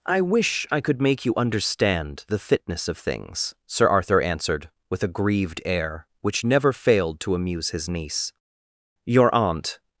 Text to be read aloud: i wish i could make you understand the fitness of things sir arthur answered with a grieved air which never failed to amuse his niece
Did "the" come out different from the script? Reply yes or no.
no